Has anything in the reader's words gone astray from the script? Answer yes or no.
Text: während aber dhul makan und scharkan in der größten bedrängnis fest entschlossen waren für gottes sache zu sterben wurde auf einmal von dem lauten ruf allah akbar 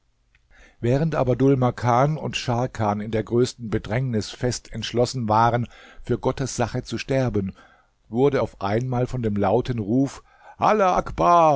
no